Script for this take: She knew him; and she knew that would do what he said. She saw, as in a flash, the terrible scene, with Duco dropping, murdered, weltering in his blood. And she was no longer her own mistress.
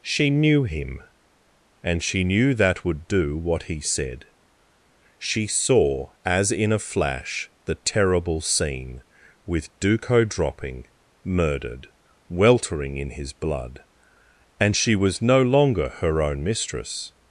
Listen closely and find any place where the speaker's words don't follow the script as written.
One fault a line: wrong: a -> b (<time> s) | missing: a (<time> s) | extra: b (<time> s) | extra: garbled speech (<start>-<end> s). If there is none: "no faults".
no faults